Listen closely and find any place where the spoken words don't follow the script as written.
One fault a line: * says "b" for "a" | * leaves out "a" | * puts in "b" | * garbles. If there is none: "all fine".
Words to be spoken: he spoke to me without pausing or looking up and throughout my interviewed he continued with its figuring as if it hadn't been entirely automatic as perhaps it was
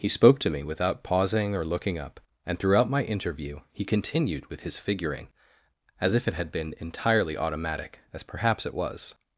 * says "interview" for "interviewed"
* says "his" for "its"
* says "had" for "hadn't"